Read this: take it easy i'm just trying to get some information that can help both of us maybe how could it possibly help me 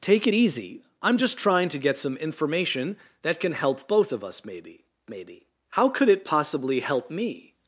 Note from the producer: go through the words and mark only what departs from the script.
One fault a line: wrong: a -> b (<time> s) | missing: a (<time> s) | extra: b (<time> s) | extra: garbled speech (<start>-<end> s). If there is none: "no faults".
extra: maybe (5.1 s)